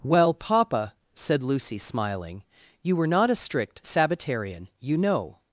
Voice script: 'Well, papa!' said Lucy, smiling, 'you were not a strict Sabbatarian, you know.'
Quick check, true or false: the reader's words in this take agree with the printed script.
true